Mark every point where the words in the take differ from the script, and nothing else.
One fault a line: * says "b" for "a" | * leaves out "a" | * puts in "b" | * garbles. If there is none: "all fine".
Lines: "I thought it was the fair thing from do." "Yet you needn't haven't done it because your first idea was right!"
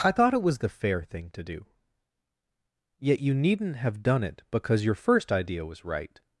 * says "to" for "from"
* says "have" for "haven't"